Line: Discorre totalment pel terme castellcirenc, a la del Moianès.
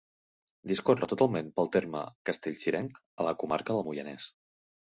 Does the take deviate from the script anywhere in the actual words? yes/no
yes